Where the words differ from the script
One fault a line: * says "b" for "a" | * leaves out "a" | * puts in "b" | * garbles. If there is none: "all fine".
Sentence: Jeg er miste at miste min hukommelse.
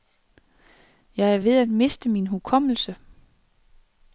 * says "ved" for "miste"